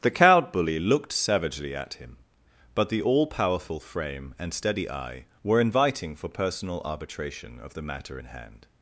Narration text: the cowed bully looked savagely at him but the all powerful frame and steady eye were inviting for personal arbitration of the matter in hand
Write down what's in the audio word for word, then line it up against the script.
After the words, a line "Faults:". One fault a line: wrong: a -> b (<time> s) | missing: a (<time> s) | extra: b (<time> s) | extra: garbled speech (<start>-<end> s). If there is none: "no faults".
the cowed bully looked savagely at him but the all powerful frame and steady eye were inviting for personal arbitration of the matter in hand
Faults:
no faults